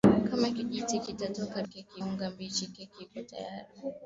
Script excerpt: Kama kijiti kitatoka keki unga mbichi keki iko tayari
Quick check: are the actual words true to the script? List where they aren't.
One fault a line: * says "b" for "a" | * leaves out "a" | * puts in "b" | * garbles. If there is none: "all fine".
all fine